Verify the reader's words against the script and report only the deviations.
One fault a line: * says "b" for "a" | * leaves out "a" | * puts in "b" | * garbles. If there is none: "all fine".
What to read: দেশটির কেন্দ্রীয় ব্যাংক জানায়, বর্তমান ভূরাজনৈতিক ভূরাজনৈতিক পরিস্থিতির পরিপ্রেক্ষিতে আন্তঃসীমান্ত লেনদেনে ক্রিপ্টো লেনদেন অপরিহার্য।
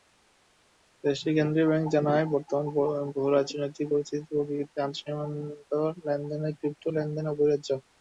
* leaves out "ভূরাজনৈতিক"